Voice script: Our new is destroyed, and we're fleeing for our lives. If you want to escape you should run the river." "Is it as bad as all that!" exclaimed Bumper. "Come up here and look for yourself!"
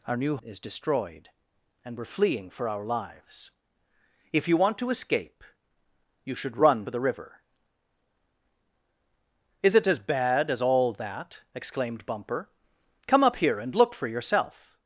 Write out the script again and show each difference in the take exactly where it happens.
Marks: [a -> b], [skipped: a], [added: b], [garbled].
Our new is destroyed, and we're fleeing for our lives. If you want to escape you should run the river." "Is it as bad as all that!" exclaimed Bumper. "Come up here and look for yourself!"